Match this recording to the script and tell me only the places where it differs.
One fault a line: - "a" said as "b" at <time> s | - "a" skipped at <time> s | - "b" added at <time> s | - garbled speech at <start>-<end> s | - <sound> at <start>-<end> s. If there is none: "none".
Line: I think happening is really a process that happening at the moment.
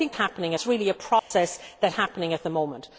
- dropout at 1.2-1.3 s